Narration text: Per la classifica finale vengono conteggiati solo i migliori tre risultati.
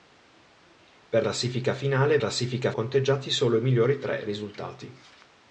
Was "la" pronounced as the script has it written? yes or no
no